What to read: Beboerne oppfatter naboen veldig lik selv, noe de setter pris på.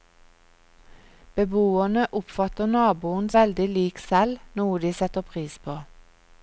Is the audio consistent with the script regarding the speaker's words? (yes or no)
yes